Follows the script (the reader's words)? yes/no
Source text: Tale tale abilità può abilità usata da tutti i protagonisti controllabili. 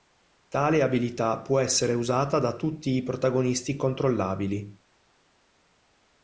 no